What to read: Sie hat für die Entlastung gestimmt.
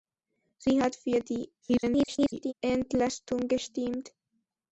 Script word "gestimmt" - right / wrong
right